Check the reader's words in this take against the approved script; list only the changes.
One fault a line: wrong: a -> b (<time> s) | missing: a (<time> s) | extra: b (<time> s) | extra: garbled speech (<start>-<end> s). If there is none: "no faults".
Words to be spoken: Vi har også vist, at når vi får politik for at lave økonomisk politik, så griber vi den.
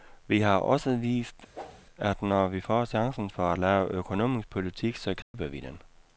wrong: politik -> chancen (2.8 s)